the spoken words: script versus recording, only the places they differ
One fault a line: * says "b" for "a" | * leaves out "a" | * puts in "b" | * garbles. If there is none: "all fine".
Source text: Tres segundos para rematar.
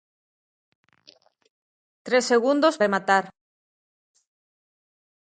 * leaves out "para"